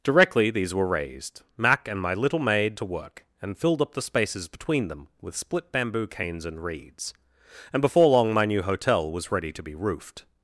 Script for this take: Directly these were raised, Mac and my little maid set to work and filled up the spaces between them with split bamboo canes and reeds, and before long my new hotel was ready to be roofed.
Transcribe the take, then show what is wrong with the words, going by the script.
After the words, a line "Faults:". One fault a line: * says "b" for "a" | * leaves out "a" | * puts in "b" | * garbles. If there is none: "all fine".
Directly these were raised, Mac and my little maid to work and filled up the spaces between them with split bamboo canes and reeds, and before long my new hotel was ready to be roofed.
Faults:
* leaves out "set"